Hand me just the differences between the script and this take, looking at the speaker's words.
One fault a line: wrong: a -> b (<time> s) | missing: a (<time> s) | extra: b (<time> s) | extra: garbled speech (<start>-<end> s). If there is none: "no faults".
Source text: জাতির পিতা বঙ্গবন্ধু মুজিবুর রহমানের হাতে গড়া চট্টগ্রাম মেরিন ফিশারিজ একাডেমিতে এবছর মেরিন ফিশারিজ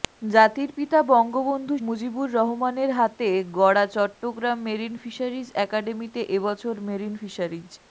no faults